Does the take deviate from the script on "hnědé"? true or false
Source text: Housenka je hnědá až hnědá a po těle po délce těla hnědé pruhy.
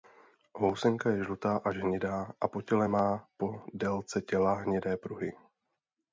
false